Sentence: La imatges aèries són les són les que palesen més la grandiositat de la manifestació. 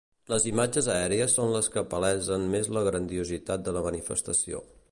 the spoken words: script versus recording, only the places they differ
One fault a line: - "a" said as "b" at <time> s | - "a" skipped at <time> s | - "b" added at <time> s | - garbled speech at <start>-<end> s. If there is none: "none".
- "La" said as "Les" at 0.3 s
- "són les" skipped at 1.7 s